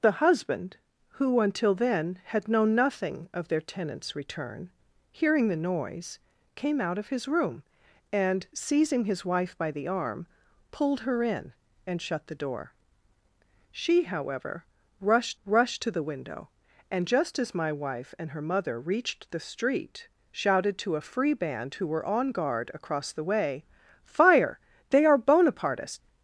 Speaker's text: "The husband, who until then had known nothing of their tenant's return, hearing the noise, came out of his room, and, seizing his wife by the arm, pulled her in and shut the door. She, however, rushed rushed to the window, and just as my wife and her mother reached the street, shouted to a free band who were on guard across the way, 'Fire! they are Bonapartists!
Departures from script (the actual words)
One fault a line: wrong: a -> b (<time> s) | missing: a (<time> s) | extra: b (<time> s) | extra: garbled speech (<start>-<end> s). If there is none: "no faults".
no faults